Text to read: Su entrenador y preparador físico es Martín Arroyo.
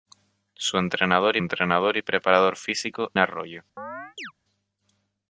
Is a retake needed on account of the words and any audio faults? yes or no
yes